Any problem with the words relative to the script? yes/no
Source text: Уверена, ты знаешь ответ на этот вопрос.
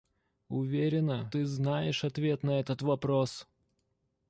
no